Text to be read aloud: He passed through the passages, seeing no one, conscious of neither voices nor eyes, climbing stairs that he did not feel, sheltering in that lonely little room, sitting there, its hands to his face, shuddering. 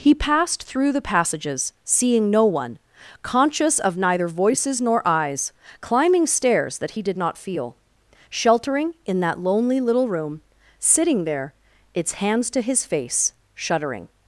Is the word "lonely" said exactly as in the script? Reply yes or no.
yes